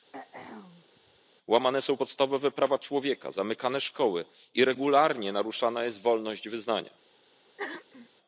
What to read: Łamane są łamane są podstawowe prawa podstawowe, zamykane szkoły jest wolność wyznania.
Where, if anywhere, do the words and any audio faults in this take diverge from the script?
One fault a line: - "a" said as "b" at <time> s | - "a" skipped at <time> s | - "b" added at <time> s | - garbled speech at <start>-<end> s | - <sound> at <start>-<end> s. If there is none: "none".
- throat clearing at 0.1-1.2 s
- "łamane są" skipped at 2.0 s
- "podstawowe" said as "człowieka" at 2.8 s
- "i regularnie naruszana" added at 4.5 s
- throat clearing at 7.6-8.1 s